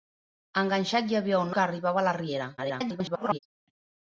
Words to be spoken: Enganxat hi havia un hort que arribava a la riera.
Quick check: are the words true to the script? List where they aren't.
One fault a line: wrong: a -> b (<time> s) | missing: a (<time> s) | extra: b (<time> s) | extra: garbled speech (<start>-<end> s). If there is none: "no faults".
missing: hort (1.5 s)
extra: garbled speech (2.6-3.4 s)